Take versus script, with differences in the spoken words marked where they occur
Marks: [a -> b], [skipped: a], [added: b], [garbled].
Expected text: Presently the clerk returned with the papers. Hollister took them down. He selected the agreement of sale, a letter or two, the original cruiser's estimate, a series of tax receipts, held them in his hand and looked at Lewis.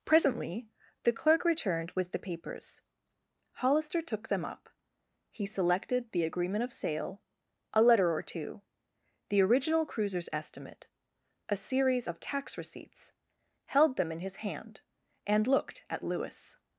Presently the clerk returned with the papers. Hollister took them [down. -> up] He selected the agreement of sale, a letter or two, the original cruiser's estimate, a series of tax receipts, held them in his hand and looked at Lewis.